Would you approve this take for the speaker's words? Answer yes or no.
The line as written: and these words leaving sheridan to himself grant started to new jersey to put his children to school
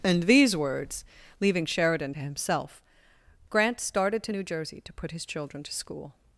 yes